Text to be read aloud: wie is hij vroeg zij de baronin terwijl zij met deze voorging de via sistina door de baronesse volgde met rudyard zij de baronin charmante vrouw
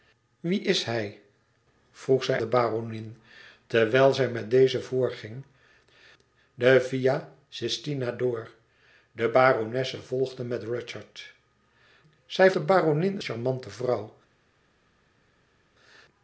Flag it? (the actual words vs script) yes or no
no